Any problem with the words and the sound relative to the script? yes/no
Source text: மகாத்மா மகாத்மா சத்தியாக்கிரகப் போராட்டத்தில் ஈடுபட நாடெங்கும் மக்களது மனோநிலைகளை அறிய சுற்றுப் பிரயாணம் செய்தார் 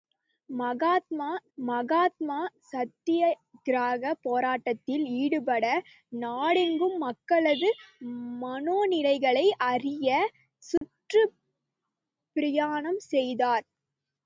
yes